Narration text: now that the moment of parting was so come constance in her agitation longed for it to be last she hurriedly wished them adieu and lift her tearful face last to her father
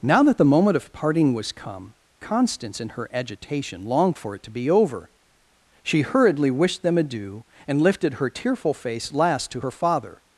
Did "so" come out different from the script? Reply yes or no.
yes